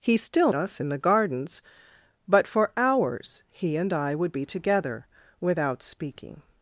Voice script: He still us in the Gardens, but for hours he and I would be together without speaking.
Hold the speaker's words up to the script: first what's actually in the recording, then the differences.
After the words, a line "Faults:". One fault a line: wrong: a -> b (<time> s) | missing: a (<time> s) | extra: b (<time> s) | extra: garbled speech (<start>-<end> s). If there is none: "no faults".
He still us in the Gardens, but for hours he and I would be together without speaking.
Faults:
no faults